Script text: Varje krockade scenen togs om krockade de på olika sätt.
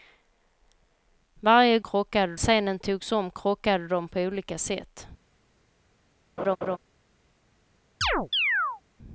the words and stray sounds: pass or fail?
fail